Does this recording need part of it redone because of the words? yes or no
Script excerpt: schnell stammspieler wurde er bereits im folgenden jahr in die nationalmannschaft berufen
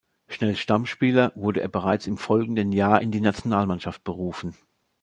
no